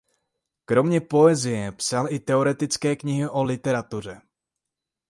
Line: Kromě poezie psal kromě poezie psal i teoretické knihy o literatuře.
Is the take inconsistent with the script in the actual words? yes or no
yes